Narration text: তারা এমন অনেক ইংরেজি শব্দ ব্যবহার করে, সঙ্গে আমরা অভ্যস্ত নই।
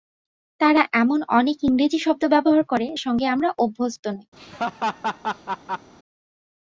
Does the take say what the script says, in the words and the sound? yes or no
no